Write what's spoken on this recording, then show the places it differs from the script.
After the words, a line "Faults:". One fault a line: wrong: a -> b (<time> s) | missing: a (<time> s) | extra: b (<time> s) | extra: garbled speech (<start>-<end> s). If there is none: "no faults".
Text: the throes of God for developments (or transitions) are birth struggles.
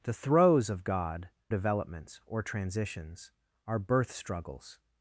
the throes of God developments (or transitions) are birth struggles.
Faults:
missing: for (1.3 s)